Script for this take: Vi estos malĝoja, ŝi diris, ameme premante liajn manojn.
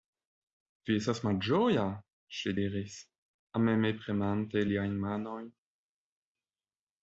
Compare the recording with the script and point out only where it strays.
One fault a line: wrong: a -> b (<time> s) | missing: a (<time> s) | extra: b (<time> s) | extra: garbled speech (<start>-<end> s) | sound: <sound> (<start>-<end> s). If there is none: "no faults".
wrong: estos -> estas (1.0 s)